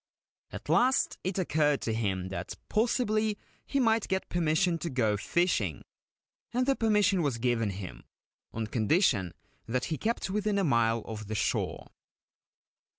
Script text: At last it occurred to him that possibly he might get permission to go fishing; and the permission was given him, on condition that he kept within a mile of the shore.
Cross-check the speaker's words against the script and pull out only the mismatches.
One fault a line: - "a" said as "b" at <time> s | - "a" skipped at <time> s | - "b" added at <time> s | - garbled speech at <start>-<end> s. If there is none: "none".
none